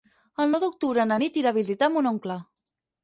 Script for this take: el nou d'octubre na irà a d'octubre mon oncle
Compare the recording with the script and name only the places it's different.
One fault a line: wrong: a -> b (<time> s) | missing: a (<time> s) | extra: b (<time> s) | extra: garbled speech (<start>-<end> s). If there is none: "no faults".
extra: nit (1.2 s)
wrong: d'octubre -> visitar (1.6 s)